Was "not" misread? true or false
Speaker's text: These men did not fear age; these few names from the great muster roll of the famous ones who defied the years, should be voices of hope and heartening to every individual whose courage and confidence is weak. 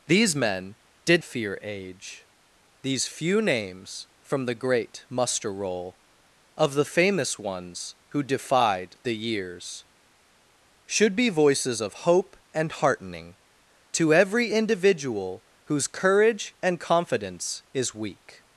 true